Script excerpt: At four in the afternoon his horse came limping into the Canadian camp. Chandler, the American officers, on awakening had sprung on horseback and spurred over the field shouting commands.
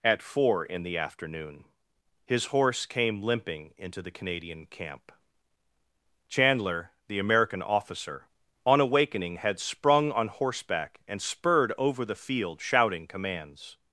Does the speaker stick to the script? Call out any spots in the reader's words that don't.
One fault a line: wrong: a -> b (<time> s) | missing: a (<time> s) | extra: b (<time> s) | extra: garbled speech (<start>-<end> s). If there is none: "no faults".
wrong: officers -> officer (7.6 s)